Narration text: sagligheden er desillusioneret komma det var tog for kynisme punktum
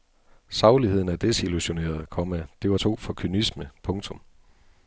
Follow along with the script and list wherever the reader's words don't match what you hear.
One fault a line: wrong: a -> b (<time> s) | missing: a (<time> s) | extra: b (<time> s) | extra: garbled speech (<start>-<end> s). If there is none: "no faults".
no faults